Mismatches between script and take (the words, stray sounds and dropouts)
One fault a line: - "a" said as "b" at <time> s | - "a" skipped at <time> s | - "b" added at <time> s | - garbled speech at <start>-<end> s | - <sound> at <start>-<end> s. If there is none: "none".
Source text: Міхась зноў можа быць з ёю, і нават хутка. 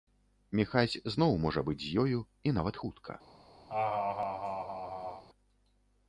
- laugh at 3.7-5.2 s